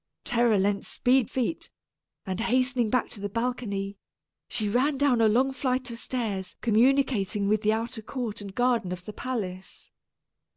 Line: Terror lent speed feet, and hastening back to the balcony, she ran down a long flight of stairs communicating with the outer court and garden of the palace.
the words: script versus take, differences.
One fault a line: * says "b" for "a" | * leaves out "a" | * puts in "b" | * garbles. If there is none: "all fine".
all fine